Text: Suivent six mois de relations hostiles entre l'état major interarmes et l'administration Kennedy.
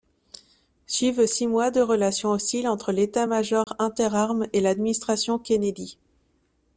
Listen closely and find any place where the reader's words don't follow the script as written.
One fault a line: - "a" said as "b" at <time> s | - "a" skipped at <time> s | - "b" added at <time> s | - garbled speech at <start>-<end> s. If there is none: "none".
none